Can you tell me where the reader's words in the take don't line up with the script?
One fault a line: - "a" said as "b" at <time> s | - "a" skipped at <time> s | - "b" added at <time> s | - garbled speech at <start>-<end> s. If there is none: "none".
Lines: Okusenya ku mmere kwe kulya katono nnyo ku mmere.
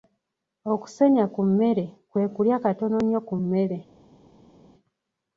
none